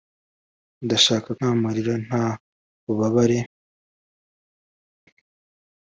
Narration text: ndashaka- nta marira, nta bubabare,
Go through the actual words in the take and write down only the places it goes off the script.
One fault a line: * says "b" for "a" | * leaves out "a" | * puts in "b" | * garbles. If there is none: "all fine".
all fine